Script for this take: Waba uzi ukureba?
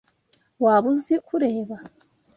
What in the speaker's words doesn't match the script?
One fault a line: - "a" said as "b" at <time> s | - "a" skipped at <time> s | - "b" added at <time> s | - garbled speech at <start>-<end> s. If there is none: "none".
none